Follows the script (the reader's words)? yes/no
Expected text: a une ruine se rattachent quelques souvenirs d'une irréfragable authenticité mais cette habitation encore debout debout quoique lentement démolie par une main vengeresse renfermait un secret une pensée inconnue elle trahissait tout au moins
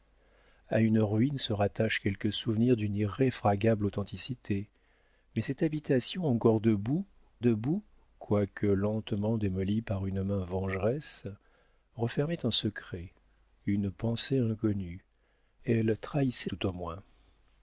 yes